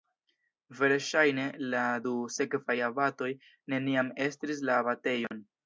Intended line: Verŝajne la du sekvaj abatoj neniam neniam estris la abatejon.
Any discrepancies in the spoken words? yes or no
yes